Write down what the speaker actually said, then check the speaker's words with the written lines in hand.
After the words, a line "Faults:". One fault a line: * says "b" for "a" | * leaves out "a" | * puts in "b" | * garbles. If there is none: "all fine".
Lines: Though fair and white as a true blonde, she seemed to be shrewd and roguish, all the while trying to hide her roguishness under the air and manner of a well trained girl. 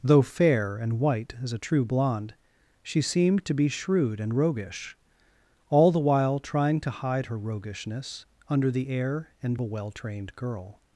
Though fair and white as a true blonde, she seemed to be shrewd and roguish, all the while trying to hide her roguishness under the air and a well trained girl.
Faults:
* leaves out "manner of"